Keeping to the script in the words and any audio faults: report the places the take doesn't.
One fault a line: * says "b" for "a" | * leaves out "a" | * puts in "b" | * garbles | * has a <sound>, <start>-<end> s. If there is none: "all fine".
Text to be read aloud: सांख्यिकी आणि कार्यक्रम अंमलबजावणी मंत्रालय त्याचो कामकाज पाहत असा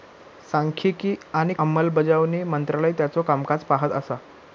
* leaves out "कार्यक्रम"